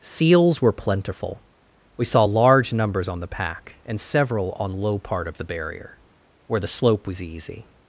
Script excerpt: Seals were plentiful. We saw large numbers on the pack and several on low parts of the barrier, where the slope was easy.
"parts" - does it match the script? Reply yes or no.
no